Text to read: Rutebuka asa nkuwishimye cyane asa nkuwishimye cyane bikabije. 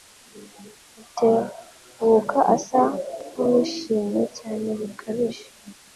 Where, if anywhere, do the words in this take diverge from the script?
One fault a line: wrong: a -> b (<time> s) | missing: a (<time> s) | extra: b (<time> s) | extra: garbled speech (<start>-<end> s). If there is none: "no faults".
missing: asa nkuwishimye cyane (4.7 s)